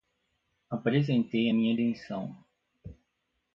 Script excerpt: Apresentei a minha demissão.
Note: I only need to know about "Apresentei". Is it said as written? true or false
true